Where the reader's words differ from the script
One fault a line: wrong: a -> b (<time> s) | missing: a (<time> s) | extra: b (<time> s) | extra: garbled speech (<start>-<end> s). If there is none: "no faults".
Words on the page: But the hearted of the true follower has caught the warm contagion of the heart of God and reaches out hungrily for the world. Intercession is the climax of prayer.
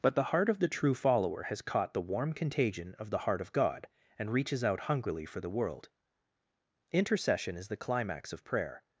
wrong: hearted -> heart (0.3 s)